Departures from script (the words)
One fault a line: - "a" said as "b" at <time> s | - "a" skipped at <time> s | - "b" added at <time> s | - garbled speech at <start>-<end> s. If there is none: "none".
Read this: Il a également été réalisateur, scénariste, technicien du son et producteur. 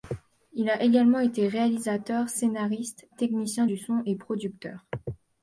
none